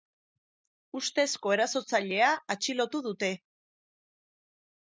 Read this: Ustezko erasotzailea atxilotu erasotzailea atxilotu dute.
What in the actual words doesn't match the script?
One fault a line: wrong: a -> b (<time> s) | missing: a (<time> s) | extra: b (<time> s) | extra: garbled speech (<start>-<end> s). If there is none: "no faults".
missing: erasotzailea atxilotu (3.0 s)